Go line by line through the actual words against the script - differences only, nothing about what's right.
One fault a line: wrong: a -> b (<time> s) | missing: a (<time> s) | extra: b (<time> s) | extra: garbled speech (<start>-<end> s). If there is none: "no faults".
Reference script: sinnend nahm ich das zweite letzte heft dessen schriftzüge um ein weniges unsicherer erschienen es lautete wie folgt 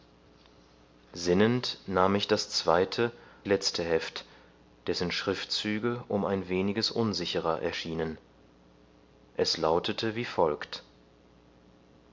no faults